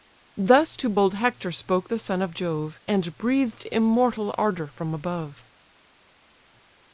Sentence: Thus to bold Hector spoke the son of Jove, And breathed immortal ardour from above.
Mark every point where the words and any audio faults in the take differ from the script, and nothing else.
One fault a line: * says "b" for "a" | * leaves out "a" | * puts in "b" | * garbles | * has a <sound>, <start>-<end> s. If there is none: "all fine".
all fine